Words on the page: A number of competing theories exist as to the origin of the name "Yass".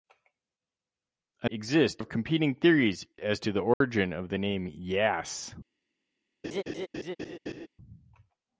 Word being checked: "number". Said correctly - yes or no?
no